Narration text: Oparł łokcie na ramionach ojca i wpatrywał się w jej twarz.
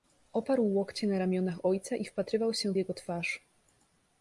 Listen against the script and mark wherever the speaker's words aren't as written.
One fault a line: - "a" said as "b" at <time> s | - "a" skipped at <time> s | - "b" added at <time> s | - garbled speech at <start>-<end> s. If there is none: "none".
- "jej" said as "jego" at 2.7 s